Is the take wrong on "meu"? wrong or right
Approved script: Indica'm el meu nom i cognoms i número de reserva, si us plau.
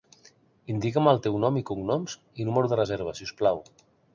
wrong